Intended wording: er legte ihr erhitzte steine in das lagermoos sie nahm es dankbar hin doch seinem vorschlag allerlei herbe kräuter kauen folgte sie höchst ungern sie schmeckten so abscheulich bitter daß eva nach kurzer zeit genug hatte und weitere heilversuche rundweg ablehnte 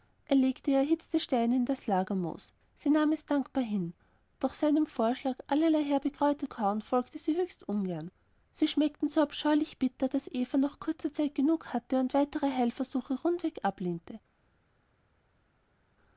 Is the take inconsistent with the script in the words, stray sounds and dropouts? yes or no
no